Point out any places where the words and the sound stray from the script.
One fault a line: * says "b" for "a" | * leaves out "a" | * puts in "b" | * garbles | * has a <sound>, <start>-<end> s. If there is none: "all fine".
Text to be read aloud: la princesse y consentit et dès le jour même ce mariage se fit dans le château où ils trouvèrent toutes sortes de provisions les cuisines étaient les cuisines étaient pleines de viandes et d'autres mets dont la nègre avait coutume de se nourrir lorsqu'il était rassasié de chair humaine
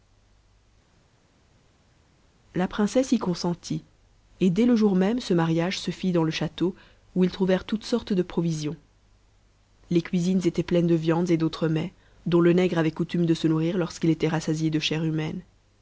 * leaves out "les cuisines étaient"
* says "le" for "la"